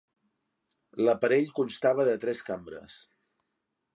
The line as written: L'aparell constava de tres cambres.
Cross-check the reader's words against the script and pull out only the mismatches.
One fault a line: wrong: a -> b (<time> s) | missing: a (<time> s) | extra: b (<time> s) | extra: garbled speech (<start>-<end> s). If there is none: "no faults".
no faults